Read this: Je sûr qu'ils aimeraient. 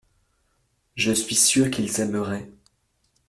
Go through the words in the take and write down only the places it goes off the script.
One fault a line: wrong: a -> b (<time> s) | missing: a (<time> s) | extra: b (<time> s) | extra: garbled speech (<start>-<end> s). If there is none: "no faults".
extra: suis (1.1 s)